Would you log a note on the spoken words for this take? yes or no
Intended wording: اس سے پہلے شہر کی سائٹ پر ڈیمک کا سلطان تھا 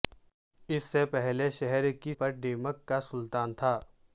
yes